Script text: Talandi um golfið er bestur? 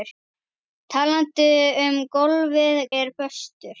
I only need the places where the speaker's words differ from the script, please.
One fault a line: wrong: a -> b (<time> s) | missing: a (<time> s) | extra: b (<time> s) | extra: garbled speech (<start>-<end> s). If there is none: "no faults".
no faults